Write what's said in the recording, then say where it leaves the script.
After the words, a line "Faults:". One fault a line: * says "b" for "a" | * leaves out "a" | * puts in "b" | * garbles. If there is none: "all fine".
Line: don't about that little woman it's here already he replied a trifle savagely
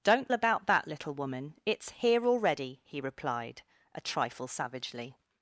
don't about that little woman it's here already he replied a trifle savagely
Faults:
all fine